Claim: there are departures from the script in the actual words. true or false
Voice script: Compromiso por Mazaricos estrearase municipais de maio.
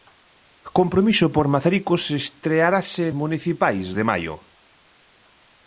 false